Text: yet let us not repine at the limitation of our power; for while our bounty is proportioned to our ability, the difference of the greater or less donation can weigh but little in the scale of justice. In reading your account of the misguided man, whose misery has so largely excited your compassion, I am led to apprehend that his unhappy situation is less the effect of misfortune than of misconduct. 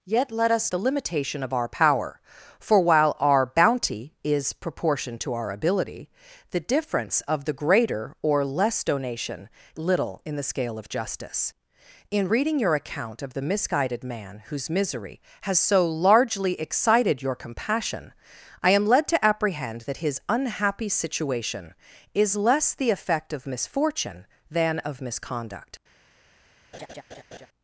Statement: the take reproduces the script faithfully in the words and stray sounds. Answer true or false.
false